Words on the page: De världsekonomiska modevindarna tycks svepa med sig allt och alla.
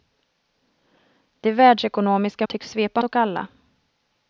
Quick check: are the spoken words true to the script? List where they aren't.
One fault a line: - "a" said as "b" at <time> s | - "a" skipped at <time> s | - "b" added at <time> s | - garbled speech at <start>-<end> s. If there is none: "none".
- "modevindarna" skipped at 2.5 s
- "med sig allt" skipped at 3.0 s